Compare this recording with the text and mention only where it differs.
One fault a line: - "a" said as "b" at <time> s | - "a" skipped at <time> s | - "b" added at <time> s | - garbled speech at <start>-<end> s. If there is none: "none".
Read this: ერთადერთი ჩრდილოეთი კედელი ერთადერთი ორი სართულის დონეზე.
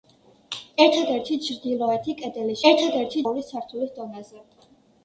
none